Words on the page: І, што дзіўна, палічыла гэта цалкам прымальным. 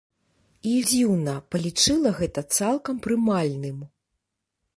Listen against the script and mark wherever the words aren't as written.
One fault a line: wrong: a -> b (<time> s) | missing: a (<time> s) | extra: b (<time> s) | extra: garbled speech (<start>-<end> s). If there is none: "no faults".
missing: што (0.7 s)